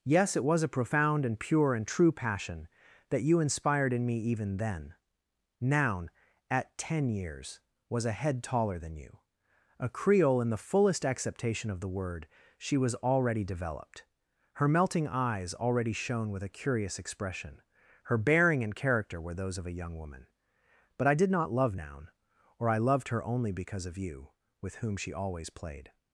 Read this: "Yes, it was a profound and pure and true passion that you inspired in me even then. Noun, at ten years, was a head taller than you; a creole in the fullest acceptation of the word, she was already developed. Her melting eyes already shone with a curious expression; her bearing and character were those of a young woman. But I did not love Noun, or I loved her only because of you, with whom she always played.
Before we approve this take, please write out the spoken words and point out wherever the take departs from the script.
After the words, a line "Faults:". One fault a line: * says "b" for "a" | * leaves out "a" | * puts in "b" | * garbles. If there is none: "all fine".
"Yes, it was a profound and pure and true passion that you inspired in me even then. Noun, at ten years, was a head taller than you; a creole in the fullest acceptation of the word, she was already developed. Her melting eyes already shone with a curious expression; her bearing and character were those of a young woman. But I did not love Noun, or I loved her only because of you, with whom she always played.
Faults:
all fine